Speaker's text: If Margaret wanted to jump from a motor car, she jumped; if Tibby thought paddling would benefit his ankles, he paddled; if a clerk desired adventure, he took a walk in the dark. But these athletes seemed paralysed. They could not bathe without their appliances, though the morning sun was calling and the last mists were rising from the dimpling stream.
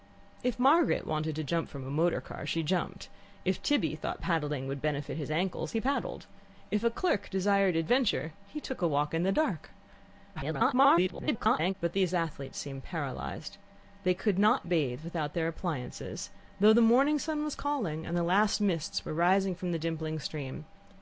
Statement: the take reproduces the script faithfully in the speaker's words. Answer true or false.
false